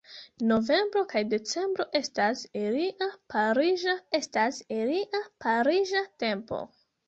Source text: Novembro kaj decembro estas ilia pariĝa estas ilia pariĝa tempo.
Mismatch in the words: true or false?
false